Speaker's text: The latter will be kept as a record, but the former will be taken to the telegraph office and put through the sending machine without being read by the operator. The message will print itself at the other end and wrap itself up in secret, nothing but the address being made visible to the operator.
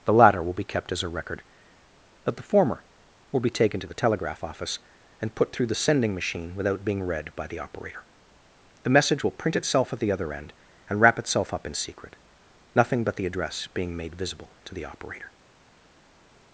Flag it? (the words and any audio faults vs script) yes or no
no